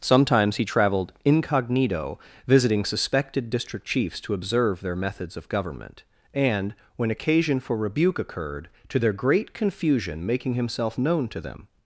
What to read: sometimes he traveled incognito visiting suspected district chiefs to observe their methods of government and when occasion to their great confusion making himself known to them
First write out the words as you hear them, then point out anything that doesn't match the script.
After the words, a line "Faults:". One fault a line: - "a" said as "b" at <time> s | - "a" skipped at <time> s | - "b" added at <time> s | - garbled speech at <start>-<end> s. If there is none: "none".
sometimes he traveled incognito visiting suspected district chiefs to observe their methods of government and when occasion for rebuke occurred to their great confusion making himself known to them
Faults:
- "for rebuke occurred" added at 7.6 s